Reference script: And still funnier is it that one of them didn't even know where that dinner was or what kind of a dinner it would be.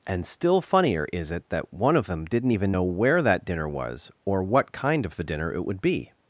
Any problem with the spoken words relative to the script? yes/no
yes